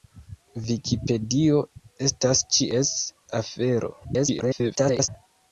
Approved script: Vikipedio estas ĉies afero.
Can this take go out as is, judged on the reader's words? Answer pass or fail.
fail